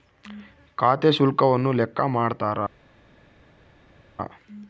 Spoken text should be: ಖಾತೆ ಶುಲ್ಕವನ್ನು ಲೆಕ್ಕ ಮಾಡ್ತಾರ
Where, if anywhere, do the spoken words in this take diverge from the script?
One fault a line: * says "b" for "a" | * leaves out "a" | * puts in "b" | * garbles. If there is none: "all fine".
all fine